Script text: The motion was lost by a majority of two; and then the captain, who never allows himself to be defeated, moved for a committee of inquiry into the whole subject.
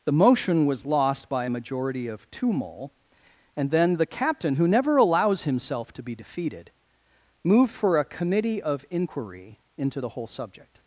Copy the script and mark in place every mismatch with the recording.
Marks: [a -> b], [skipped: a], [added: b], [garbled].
The motion was lost by a majority of two; [added: mole] and then the captain, who never allows himself to be defeated, moved for a committee of inquiry into the whole subject.